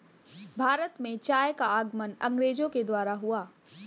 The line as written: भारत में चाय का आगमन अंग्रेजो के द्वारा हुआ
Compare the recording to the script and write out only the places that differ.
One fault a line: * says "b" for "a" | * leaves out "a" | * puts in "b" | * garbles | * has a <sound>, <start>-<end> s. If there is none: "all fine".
all fine